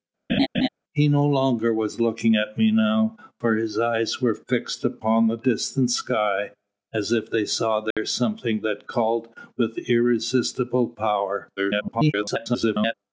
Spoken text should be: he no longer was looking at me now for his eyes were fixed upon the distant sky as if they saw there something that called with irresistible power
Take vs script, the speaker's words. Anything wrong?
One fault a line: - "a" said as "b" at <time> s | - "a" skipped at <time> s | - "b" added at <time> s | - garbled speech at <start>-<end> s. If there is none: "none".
- garbled speech at 11.6-12.9 s